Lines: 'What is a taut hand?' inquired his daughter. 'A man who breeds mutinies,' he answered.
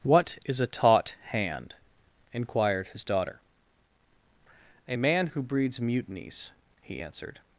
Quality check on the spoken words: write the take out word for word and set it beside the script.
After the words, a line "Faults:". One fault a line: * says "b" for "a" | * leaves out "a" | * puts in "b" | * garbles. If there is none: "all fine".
'What is a taut hand?' inquired his daughter. 'A man who breeds mutinies,' he answered.
Faults:
all fine